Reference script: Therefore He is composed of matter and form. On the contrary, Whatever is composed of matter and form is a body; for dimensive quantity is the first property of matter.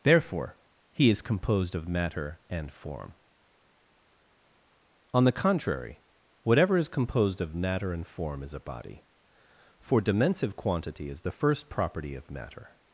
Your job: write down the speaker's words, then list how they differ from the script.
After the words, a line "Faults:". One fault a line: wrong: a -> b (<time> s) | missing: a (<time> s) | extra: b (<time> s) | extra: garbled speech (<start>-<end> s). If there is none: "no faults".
Therefore He is composed of matter and form. On the contrary, Whatever is composed of matter and form is a body; for dimensive quantity is the first property of matter.
Faults:
no faults